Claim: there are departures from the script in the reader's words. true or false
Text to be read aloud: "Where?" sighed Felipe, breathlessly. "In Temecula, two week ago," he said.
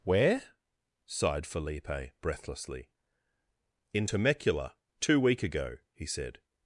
false